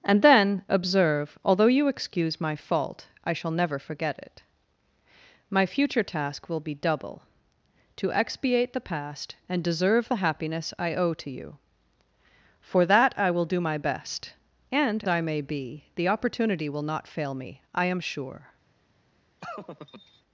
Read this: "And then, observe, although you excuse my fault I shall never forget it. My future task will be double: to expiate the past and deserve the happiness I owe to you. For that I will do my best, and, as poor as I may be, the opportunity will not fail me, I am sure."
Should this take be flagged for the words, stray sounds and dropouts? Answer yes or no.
yes